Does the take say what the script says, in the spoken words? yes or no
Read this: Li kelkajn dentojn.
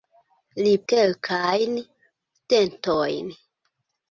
yes